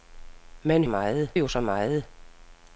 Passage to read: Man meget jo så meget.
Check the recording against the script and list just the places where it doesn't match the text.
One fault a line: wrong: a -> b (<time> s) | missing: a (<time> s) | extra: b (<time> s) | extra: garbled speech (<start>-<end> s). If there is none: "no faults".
no faults